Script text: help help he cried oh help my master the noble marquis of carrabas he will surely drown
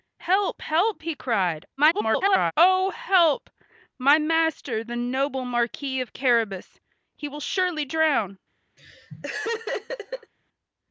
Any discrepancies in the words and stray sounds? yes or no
yes